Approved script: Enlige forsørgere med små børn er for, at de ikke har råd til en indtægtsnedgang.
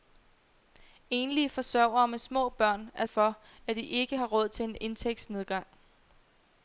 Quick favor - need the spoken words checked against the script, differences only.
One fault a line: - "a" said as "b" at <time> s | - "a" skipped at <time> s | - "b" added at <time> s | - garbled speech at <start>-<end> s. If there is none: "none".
none